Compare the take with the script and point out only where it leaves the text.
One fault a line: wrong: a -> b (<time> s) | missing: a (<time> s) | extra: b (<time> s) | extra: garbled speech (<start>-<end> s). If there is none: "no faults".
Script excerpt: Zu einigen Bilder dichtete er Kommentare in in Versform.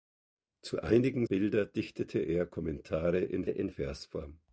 no faults